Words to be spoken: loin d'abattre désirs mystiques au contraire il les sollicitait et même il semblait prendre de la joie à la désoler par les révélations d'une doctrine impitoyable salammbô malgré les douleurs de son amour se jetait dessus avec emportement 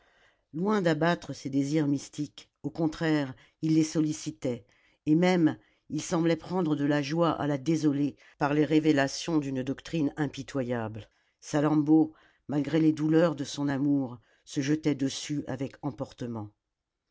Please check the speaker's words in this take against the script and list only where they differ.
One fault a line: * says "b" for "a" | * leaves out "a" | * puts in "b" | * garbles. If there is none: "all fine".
* puts in "ses"